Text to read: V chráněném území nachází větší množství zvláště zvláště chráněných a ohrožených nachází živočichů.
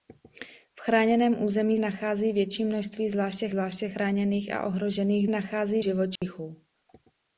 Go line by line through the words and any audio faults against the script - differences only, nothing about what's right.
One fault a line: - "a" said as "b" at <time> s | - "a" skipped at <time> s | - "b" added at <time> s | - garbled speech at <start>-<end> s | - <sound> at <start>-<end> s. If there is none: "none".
- dropout at 6.2-6.2 s